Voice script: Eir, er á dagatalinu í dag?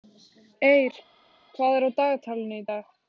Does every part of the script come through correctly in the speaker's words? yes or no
no